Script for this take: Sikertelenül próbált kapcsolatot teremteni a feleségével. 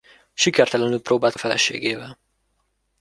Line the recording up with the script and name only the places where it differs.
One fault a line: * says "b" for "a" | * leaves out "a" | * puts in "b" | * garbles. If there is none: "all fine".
* leaves out "kapcsolatot teremteni"